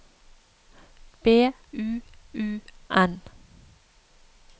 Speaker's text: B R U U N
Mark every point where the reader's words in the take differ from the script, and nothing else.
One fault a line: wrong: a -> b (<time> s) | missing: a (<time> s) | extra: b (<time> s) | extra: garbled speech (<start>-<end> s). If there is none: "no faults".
missing: R (1.5 s)